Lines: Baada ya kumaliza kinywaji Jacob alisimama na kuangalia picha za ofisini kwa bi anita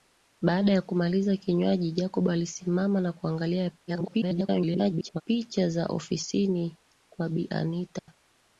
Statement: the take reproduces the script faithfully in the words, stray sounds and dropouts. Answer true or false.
false